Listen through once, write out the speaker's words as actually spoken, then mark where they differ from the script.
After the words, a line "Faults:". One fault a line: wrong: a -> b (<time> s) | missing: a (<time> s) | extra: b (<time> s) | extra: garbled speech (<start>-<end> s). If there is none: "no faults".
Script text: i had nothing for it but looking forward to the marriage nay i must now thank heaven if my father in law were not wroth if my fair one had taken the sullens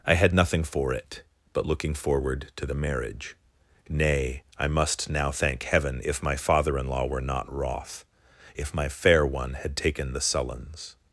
i had nothing for it but looking forward to the marriage nay i must now thank heaven if my father in law were not wroth if my fair one had taken the sullens
Faults:
no faults